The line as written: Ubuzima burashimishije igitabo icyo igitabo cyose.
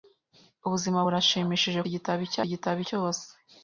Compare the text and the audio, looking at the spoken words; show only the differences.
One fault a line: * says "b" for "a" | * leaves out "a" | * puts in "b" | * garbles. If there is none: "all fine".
all fine